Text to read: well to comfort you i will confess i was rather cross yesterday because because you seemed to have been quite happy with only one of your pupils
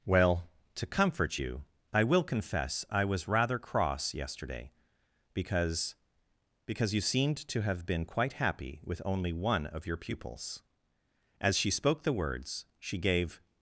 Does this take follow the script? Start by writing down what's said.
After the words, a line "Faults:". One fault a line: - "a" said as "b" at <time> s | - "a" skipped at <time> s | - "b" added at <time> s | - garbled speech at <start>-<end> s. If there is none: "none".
well to comfort you i will confess i was rather cross yesterday because because you seemed to have been quite happy with only one of your pupils as she spoke the words she gave
Faults:
- "as she spoke the words she gave" added at 11.4 s